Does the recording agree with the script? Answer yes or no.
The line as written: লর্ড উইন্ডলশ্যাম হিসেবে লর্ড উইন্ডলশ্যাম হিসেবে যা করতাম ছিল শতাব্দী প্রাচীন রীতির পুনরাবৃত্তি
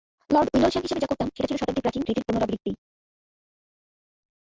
no